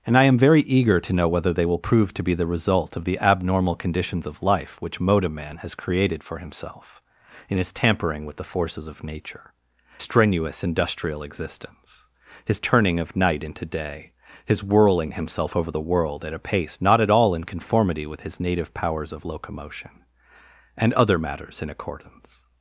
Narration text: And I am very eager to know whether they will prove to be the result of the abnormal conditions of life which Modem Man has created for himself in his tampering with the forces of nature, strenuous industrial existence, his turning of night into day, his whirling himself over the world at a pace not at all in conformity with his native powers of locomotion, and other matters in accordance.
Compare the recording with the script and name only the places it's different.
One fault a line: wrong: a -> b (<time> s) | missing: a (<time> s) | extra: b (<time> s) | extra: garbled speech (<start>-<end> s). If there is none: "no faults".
no faults